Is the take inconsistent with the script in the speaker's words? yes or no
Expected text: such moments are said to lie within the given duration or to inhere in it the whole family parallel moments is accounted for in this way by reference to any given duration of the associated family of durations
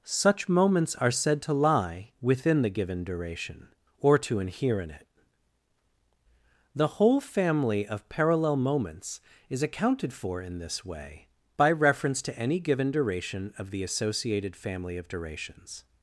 yes